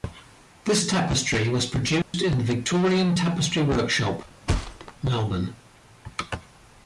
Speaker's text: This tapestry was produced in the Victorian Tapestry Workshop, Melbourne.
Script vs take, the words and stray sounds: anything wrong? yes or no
yes